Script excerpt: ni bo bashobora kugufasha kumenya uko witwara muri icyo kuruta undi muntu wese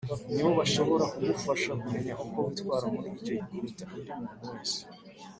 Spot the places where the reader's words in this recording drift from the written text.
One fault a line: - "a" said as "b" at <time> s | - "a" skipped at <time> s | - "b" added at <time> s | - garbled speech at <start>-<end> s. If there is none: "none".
none